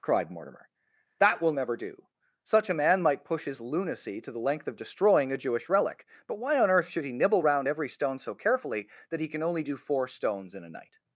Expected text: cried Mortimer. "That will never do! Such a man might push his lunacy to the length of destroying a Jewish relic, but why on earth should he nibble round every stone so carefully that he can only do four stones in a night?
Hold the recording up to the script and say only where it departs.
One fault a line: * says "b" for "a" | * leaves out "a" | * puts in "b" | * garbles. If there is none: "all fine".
all fine